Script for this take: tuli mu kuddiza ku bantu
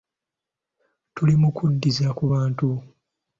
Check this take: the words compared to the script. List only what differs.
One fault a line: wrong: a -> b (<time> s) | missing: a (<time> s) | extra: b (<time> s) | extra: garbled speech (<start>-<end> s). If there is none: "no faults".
no faults